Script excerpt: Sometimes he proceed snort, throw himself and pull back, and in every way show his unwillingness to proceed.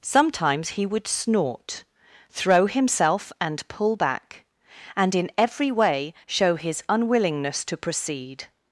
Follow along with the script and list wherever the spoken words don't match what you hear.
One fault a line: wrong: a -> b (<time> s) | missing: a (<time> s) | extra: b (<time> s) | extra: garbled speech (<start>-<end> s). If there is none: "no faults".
wrong: proceed -> would (0.8 s)